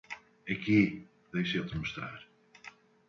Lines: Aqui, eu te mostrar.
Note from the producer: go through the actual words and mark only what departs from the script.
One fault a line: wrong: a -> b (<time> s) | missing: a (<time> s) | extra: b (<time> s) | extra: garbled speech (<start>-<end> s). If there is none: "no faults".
extra: deixa (1.3 s)